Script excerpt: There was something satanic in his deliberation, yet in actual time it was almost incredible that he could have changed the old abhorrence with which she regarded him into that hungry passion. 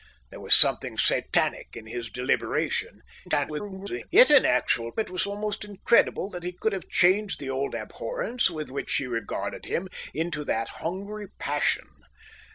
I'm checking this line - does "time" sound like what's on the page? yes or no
no